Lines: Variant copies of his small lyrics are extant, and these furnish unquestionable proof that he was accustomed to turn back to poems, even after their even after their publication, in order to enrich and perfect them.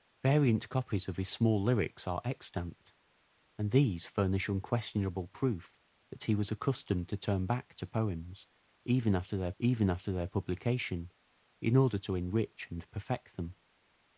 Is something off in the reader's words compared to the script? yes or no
no